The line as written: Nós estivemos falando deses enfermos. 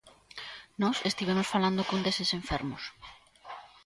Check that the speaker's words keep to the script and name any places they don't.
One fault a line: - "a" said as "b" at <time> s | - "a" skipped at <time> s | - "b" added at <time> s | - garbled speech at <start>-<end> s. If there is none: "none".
- "cun" added at 1.9 s